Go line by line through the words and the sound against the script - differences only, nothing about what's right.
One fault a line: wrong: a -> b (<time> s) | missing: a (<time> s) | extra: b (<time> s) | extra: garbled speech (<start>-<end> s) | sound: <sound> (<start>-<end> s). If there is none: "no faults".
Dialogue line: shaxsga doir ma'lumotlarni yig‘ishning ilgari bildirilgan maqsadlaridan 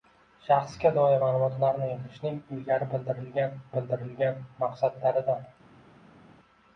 extra: bildirilgan (3.8 s)